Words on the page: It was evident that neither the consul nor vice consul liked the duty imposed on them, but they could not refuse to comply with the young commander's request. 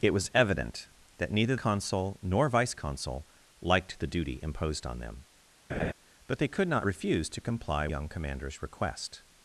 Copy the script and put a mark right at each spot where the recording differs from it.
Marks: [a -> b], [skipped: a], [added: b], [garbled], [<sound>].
It was evident that neither [skipped: the] consul nor vice consul liked the duty imposed on them, [laugh] but they could not refuse to comply [skipped: with the] young commander's request.